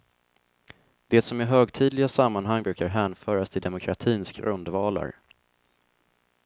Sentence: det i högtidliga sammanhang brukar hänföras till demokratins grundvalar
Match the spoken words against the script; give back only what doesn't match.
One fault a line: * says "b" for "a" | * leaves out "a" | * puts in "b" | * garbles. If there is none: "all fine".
* puts in "som"